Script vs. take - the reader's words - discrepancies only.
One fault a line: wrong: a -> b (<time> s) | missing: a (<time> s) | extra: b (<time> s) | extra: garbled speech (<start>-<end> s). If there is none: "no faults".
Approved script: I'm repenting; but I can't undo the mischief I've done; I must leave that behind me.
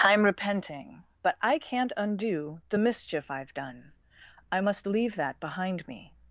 no faults